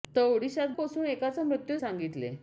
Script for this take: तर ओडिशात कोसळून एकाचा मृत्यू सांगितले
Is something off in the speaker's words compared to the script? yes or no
no